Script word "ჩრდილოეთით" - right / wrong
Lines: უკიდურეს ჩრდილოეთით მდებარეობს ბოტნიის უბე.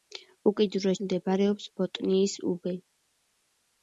wrong